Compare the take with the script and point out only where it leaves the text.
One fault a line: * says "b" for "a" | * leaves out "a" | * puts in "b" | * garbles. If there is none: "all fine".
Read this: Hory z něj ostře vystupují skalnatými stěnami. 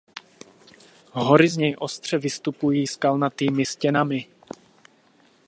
all fine